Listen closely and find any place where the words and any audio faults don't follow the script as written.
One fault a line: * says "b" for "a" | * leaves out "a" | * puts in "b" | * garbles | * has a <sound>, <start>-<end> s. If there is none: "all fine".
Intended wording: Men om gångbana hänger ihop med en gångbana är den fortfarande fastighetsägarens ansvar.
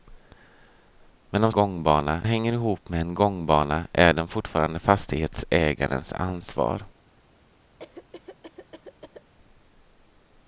* has a cough, 7.8-9.3 s